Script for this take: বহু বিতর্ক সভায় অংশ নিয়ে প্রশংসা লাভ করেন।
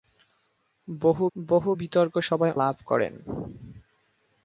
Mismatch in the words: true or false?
true